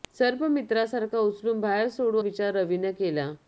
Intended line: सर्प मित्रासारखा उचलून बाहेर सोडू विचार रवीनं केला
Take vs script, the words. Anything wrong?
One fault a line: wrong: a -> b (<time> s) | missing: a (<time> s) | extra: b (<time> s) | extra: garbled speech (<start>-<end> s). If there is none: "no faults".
no faults